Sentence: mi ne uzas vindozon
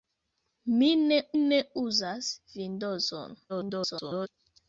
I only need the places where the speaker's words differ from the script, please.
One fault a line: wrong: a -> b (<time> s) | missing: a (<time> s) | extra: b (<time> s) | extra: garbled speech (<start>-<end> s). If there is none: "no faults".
extra: ne (1.4 s)
extra: garbled speech (3.5-4.3 s)